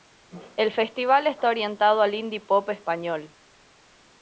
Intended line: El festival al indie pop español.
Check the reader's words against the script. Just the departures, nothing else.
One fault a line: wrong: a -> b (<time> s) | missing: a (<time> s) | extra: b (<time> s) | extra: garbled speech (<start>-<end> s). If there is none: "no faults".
extra: está orientado (1.3 s)